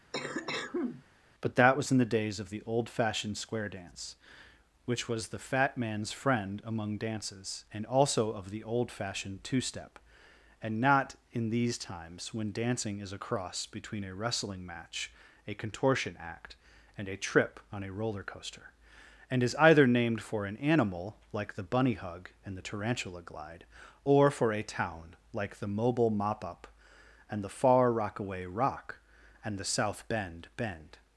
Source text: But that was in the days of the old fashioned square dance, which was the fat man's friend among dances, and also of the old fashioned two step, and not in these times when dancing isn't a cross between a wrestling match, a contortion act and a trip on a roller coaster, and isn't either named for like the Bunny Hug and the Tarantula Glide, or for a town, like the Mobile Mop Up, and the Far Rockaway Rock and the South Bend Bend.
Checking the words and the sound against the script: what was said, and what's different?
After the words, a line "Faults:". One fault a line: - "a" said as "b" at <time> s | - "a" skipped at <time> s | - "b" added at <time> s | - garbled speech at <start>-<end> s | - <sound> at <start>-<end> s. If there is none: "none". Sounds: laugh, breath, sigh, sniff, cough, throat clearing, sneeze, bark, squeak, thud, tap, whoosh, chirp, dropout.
But that was in the days of the old fashioned square dance, which was the fat man's friend among dances, and also of the old fashioned two step, and not in these times when dancing is a cross between a wrestling match, a contortion act and a trip on a roller coaster, and is either named for an animal, like the Bunny Hug and the Tarantula Glide, or for a town, like the Mobile Mop Up, and the Far Rockaway Rock and the South Bend Bend.
Faults:
- cough at 0.1-1.0 s
- "isn't" said as "is" at 13.0 s
- "isn't" said as "is" at 19.4 s
- "an animal" added at 20.5 s